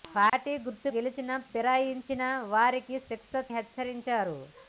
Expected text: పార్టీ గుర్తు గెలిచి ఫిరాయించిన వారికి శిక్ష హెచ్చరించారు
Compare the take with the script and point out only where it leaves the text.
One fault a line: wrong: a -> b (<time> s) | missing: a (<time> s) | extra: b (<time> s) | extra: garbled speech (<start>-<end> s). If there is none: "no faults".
no faults